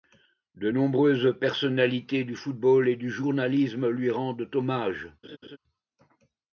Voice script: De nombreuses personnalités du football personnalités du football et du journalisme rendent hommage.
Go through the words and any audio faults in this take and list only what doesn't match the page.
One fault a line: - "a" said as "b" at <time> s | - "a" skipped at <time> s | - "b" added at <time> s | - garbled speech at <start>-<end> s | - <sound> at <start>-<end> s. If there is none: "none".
- "personnalités du football" skipped at 2.9 s
- "lui" added at 3.9 s
- laugh at 5.2-5.6 s